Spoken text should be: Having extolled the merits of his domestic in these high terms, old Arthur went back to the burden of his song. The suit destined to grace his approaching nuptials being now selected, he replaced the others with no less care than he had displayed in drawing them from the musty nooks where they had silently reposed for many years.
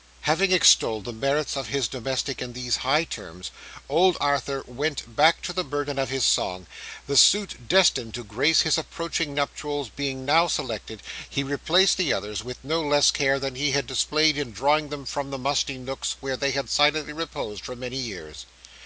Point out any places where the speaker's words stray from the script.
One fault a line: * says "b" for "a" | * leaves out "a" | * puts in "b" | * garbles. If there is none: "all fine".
all fine